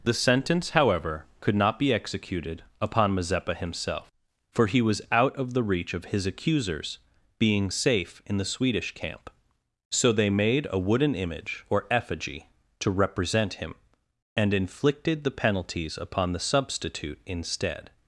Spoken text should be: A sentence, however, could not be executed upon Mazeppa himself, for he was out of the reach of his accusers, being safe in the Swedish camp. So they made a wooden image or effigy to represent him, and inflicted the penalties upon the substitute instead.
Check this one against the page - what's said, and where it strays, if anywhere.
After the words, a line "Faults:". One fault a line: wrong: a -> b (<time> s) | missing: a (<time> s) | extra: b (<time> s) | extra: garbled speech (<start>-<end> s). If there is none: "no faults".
The sentence, however, could not be executed upon Mazeppa himself, for he was out of the reach of his accusers, being safe in the Swedish camp. So they made a wooden image or effigy to represent him, and inflicted the penalties upon the substitute instead.
Faults:
wrong: A -> The (0.0 s)